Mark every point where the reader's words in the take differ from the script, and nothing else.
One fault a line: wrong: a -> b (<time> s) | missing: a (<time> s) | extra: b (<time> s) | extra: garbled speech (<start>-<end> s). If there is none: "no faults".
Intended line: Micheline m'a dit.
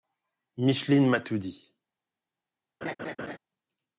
extra: tout (1.2 s)